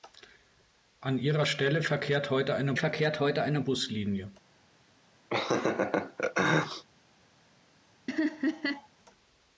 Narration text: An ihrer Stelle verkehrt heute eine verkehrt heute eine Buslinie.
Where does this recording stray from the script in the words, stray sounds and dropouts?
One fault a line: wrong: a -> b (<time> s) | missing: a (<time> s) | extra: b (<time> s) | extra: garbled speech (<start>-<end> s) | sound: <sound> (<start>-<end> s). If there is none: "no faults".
sound: laugh (5.3-6.8 s)
sound: laugh (8.1-8.9 s)